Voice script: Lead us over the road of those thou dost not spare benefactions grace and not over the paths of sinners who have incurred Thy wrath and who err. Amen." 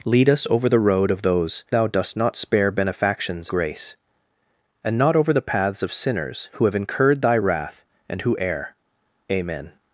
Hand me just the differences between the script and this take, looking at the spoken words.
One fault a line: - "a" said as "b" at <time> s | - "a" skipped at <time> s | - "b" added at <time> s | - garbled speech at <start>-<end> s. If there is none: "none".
none